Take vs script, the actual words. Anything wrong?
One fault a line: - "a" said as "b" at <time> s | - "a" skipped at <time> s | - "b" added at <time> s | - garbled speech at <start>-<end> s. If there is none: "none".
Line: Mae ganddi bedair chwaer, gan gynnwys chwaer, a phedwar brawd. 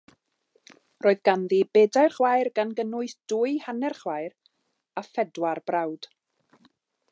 - "Mae" said as "Roedd" at 1.1 s
- "dwy hanner" added at 3.3 s